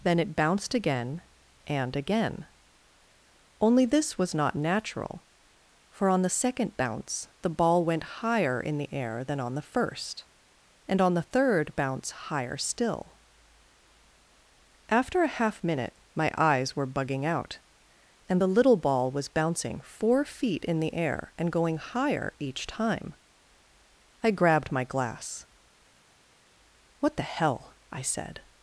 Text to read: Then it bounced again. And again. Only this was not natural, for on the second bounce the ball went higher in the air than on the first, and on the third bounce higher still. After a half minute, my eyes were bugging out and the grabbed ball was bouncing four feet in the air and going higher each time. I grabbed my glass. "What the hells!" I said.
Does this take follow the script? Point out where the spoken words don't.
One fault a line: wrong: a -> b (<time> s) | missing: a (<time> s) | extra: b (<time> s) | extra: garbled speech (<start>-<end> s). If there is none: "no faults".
wrong: grabbed -> little (18.5 s)
wrong: hells -> hell (27.2 s)